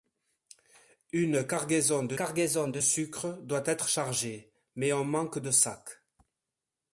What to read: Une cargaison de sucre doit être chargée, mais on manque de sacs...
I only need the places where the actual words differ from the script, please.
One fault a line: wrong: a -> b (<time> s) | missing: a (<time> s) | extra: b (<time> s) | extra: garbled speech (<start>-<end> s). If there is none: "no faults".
extra: cargaison de (2.1 s)